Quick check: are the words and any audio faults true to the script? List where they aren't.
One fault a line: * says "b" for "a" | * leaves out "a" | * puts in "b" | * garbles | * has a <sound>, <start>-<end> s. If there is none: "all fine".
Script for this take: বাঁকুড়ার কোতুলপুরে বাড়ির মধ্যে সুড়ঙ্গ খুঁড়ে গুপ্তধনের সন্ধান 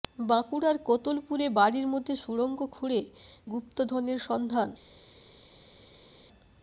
all fine